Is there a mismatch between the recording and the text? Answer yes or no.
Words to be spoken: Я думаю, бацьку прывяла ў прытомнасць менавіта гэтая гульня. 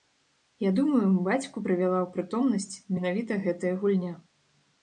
no